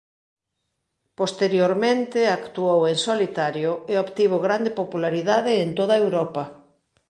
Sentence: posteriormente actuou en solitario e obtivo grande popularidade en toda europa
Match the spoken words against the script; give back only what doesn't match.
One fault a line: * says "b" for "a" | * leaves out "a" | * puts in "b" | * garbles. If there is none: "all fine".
all fine